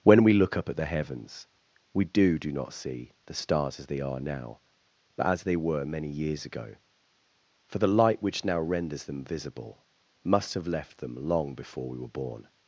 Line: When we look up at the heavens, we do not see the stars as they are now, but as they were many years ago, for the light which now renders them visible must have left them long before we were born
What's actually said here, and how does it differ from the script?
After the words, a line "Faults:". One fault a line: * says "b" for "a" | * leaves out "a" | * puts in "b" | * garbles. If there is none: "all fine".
When we look up at the heavens, we do do not see the stars as they are now, but as they were many years ago, for the light which now renders them visible must have left them long before we were born
Faults:
* puts in "do"